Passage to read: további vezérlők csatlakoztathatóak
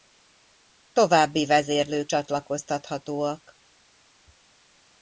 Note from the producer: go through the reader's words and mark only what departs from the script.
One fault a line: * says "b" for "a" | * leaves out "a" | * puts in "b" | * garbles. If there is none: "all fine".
all fine